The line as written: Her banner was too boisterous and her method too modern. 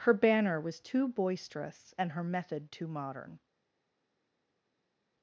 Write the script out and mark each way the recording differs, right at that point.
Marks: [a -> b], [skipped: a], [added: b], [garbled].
Her banner was too boisterous and her method too modern.